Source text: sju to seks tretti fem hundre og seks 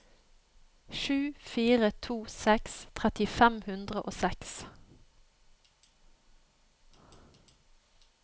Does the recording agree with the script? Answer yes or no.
no